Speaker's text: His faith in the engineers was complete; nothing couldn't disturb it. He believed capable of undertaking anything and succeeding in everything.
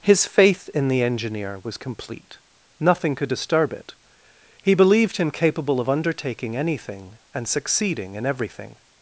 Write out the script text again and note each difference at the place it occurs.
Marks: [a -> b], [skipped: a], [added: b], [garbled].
His faith in the [engineers -> engineer] was complete; nothing [couldn't -> could] disturb it. He believed [added: him] capable of undertaking anything and succeeding in everything.